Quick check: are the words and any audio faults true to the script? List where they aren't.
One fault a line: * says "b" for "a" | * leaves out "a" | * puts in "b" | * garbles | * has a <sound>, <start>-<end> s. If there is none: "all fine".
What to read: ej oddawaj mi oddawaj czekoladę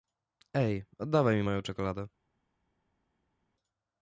* says "moją" for "oddawaj"